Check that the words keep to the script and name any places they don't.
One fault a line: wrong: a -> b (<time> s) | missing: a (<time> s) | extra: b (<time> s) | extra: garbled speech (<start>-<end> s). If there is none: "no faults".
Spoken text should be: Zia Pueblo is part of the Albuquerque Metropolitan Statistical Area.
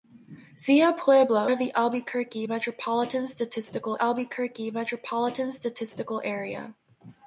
wrong: is part of the -> of the Albuquerque Metropolitan Statistical (1.5 s)